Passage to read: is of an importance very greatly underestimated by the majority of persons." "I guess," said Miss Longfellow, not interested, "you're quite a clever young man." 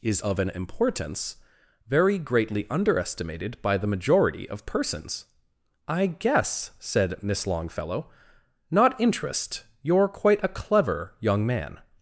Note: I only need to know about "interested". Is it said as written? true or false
false